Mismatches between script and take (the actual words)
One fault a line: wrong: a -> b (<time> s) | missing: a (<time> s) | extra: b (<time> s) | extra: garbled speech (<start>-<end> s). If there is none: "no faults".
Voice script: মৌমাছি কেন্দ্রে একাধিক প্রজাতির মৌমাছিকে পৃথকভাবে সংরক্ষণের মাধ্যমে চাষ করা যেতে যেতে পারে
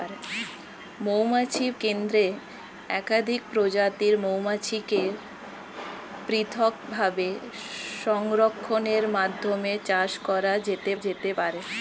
no faults